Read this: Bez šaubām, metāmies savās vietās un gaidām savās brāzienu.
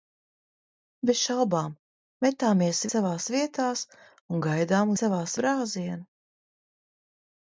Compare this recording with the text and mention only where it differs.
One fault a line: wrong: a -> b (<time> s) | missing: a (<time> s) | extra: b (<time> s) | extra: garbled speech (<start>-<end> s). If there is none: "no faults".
no faults